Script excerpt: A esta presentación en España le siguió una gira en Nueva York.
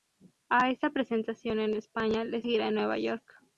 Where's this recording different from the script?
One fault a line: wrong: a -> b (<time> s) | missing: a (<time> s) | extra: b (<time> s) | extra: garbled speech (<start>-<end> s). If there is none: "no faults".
missing: siguió una (2.4 s)